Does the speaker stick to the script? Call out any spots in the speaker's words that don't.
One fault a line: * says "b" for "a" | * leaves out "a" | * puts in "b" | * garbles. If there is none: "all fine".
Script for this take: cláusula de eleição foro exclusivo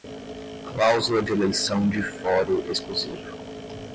* puts in "de"